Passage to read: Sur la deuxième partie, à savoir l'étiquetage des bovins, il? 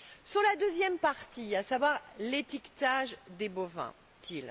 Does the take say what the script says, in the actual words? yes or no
yes